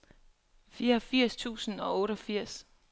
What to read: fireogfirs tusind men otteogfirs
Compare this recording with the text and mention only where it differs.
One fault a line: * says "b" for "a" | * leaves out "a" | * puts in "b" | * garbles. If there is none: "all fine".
* says "og" for "men"